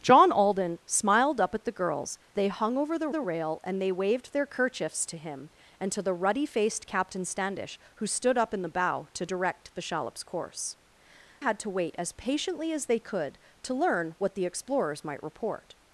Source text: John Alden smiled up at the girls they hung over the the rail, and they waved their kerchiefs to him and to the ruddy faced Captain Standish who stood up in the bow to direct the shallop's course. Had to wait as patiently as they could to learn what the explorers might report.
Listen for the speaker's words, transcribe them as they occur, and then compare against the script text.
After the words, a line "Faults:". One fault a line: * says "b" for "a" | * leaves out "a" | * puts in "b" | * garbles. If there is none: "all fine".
John Alden smiled up at the girls they hung over the the rail, and they waved their kerchiefs to him and to the ruddy faced Captain Standish who stood up in the bow to direct the shallop's course. Had to wait as patiently as they could to learn what the explorers might report.
Faults:
all fine